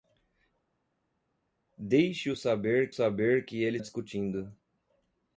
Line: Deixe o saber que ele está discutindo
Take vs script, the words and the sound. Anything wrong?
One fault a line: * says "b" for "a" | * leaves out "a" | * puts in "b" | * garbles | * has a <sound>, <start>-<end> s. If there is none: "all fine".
* puts in "saber"
* leaves out "está"